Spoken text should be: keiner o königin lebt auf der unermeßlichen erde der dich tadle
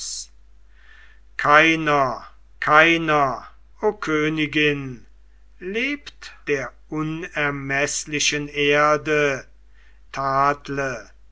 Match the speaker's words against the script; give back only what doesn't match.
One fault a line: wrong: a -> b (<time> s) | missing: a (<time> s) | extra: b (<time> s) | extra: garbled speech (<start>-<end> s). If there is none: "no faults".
extra: keiner (2.6 s)
missing: auf (6.3 s)
missing: der dich (9.4 s)